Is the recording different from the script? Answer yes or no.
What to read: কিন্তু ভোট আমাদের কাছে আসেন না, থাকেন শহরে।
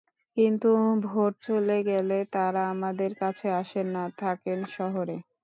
yes